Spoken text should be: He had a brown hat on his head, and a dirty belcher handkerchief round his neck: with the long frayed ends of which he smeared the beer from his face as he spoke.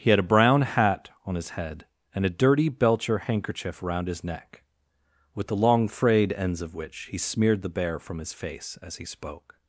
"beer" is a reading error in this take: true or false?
true